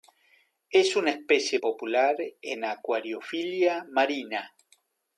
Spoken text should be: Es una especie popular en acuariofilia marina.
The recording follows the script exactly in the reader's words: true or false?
true